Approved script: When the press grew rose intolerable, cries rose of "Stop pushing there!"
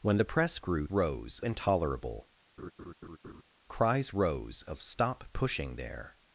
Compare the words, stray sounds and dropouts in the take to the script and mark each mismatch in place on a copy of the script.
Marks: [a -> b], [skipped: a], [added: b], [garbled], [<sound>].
When the press grew rose intolerable, [laugh] cries rose of "Stop pushing there!"